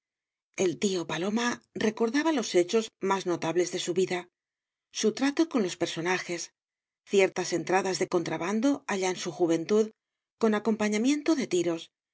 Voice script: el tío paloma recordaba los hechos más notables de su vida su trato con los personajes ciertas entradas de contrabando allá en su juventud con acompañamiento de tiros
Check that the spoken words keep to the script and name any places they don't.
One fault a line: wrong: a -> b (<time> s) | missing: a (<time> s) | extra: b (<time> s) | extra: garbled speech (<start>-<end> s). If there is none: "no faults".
no faults